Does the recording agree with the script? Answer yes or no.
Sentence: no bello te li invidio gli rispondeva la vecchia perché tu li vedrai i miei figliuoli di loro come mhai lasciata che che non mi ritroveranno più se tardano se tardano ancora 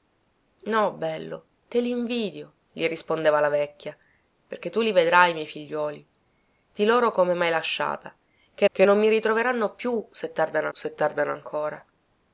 yes